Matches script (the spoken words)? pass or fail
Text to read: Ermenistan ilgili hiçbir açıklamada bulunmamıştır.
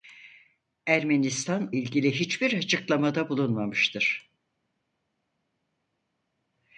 pass